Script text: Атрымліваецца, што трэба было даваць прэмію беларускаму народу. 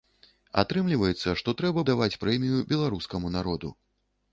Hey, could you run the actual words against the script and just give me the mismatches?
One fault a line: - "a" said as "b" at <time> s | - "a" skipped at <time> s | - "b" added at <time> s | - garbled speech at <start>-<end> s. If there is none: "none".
- "было" skipped at 1.8 s